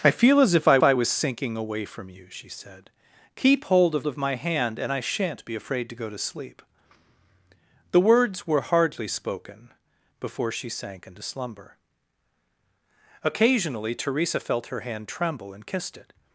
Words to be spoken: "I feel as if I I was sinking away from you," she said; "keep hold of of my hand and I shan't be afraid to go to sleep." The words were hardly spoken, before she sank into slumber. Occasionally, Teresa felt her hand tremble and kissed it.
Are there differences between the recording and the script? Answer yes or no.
no